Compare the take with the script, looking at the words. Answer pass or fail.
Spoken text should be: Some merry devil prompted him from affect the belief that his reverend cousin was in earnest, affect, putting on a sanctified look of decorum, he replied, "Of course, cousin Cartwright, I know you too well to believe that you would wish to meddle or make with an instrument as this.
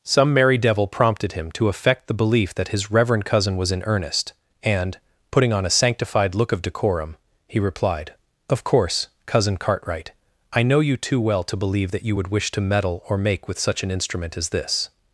fail